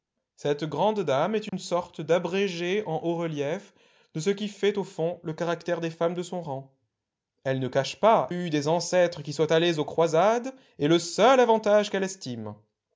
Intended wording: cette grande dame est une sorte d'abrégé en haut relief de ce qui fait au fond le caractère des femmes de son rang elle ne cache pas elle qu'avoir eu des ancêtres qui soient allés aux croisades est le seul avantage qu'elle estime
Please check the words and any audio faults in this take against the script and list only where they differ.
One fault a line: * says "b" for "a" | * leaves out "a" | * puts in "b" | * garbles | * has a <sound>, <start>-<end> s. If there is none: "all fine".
* has a dropout, 1.5-1.5 s
* leaves out "elle qu'avoir"